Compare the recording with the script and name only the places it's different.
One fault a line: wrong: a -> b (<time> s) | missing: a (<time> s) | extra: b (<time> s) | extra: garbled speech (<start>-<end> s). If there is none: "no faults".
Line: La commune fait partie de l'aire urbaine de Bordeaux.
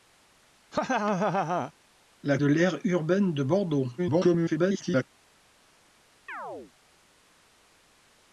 missing: commune fait partie (2.4 s)
extra: garbled speech (4.0-5.0 s)